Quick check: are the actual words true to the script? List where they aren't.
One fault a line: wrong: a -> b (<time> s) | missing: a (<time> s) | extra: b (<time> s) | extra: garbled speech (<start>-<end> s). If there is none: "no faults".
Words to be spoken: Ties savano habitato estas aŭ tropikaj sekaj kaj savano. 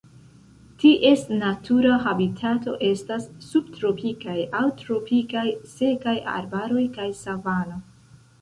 wrong: savano -> natura (1.4 s)
extra: subtropikaj (3.5 s)
extra: arbaroj (6.4 s)